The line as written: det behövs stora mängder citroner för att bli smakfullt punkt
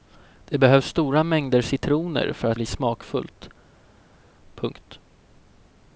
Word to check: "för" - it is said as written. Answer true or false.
true